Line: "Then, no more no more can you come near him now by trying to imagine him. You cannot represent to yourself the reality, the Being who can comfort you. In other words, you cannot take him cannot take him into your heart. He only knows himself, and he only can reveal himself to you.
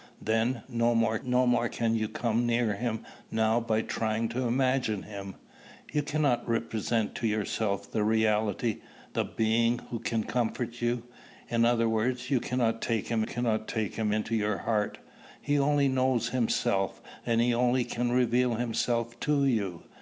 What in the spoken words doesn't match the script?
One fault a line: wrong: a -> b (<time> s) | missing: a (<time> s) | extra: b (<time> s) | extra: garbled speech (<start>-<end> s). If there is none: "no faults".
no faults